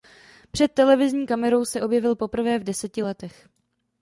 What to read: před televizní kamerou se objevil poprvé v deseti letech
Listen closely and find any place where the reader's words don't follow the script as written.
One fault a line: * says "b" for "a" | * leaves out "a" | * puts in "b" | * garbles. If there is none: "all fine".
all fine